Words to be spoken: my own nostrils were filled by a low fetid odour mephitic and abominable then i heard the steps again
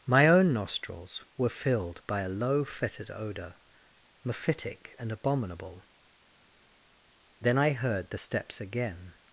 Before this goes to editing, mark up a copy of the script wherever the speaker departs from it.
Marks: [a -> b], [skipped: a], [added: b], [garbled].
my own nostrils were filled by a low fetid odour mephitic and abominable then i heard the steps again